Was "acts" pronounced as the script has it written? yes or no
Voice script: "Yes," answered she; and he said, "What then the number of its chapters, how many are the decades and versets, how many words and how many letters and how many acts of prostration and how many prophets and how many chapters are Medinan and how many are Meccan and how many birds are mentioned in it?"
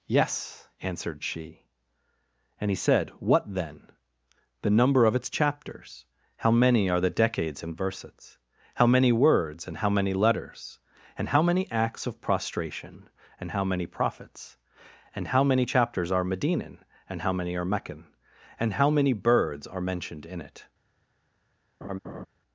yes